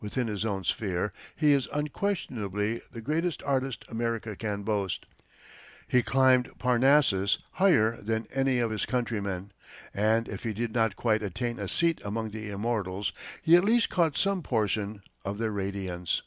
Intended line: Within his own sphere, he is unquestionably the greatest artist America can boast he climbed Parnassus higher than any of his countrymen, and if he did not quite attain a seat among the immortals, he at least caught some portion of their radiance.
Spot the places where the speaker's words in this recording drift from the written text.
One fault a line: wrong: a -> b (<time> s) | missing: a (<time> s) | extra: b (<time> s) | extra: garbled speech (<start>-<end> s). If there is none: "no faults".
no faults